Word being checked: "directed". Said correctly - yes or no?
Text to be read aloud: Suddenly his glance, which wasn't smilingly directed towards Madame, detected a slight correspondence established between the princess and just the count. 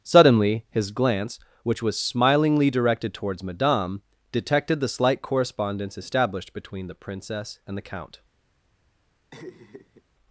yes